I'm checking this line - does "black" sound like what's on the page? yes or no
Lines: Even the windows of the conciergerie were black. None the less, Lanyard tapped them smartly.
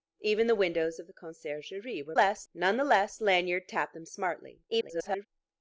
no